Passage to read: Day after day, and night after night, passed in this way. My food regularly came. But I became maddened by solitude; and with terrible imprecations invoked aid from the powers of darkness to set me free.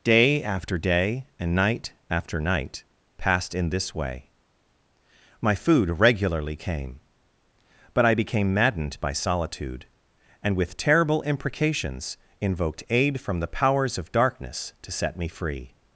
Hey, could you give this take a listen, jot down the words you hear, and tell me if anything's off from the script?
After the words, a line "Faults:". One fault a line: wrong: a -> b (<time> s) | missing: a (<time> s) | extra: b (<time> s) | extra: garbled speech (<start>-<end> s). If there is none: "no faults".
Day after day, and night after night, passed in this way. My food regularly came. But I became maddened by solitude; and with terrible imprecations invoked aid from the powers of darkness to set me free.
Faults:
no faults